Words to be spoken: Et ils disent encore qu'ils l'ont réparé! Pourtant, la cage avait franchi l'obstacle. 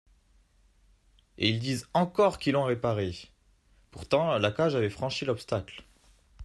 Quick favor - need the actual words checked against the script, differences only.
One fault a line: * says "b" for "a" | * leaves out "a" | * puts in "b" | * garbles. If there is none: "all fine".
all fine